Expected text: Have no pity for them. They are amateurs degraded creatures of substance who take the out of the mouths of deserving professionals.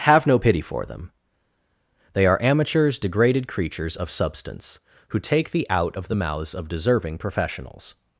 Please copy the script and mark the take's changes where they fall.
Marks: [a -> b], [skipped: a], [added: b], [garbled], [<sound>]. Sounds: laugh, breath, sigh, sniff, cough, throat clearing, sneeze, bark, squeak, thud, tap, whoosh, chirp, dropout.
Have no pity for them. They are amateurs degraded creatures of substance who take the out of the mouths of deserving professionals.